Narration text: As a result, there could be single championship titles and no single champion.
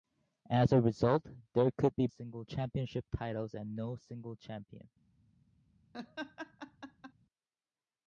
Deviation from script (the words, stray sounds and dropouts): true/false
true